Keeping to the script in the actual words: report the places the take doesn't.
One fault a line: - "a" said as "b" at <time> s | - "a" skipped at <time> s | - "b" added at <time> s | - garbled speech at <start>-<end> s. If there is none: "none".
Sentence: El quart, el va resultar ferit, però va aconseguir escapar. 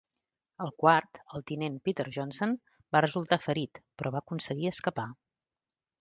- "tinent Peter Johnson" added at 1.5 s